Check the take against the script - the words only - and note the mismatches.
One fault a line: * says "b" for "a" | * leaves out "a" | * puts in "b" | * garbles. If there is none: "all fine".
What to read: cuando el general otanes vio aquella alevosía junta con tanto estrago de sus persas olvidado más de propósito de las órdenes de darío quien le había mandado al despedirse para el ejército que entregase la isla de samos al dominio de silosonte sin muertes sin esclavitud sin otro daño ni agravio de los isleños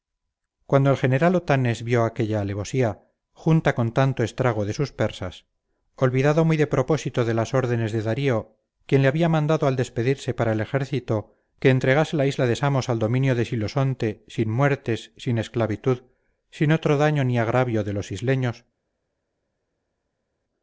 * says "muy" for "más"